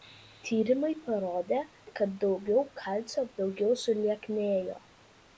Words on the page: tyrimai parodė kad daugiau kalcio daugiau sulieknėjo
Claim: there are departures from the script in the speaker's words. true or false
false